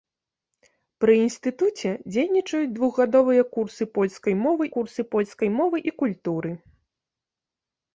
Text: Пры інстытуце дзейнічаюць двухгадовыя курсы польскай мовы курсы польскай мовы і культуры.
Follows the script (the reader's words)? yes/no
yes